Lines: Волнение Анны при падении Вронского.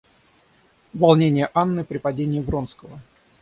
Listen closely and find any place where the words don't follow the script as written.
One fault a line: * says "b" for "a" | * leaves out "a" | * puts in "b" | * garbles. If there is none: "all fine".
all fine